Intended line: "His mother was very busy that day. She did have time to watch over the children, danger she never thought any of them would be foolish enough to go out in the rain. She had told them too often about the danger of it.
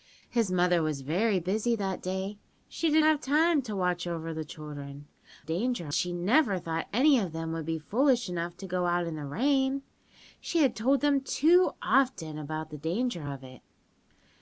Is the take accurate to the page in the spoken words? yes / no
yes